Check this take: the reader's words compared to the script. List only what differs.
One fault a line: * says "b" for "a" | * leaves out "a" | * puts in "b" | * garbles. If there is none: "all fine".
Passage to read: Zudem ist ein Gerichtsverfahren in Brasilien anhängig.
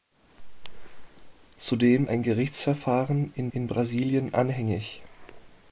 * leaves out "ist"
* puts in "in"